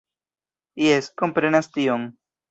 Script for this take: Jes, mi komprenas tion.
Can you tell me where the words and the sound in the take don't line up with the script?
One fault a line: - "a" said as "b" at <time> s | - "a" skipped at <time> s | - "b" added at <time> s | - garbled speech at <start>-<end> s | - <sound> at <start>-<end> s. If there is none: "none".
- "mi" skipped at 1.1 s